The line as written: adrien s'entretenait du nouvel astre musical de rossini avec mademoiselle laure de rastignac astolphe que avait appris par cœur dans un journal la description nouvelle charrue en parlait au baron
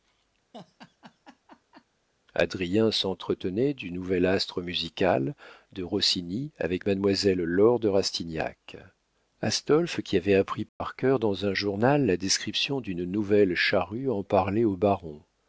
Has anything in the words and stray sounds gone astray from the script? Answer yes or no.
yes